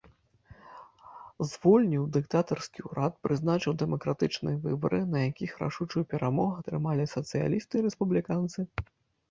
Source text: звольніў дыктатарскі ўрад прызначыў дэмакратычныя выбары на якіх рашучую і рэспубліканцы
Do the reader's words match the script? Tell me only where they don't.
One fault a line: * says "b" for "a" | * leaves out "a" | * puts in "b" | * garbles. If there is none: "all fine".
* puts in "перамогу атрымалі сацыялісты"